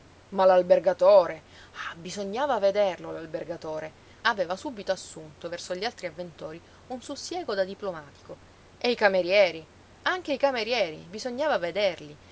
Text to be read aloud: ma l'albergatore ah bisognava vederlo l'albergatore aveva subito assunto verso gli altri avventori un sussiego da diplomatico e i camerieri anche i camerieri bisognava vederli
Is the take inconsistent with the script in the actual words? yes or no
no